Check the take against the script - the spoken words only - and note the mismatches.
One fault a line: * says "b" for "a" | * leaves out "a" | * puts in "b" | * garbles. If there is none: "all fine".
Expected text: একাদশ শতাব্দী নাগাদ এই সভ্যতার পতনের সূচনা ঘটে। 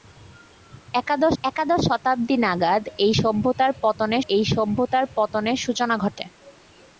* puts in "একাদশ"
* puts in "এই সভ্যতার পতনের"